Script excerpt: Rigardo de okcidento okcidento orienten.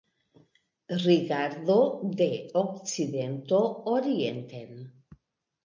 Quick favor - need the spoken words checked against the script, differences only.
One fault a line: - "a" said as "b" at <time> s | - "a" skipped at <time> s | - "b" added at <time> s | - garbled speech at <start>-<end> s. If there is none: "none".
- "okcidento" skipped at 3.6 s